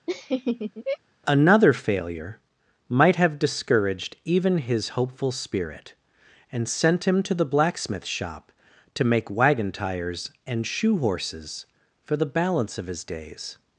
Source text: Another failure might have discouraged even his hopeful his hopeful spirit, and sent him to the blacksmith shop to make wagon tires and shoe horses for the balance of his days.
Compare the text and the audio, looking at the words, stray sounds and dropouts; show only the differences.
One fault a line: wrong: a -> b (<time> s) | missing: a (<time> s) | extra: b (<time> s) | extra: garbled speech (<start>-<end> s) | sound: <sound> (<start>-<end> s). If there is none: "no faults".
sound: laugh (0.1-1.0 s)
missing: his hopeful (5.3 s)